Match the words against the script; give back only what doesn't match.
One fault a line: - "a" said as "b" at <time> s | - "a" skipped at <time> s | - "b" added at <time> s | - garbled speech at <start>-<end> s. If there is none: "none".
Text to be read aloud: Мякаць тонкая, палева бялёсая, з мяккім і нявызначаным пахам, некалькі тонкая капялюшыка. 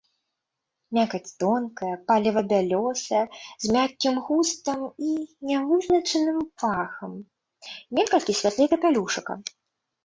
- "густам" added at 4.3 s
- "тонкая" said as "святлей" at 8.4 s